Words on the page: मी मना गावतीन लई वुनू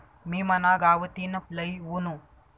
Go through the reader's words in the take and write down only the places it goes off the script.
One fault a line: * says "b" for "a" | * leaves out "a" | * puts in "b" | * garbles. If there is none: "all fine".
all fine